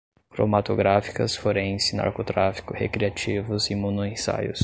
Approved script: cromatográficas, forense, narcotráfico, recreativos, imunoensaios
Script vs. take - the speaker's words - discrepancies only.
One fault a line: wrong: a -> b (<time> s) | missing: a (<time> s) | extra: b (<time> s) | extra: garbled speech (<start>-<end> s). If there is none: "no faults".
no faults